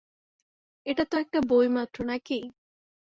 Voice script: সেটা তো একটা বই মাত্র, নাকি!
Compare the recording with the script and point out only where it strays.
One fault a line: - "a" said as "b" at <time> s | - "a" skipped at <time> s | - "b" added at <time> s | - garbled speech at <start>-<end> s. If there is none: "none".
- "সেটা" said as "এটা" at 0.8 s